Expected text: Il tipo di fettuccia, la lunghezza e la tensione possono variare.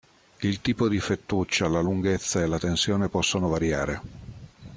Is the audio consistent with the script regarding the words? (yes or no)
yes